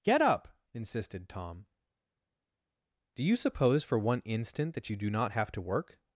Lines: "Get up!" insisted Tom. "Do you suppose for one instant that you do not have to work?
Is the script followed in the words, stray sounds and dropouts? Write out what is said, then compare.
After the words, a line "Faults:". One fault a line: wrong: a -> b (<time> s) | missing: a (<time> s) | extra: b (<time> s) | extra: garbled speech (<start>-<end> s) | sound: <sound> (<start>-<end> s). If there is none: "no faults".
"Get up!" insisted Tom. "Do you suppose for one instant that you do not have to work?
Faults:
no faults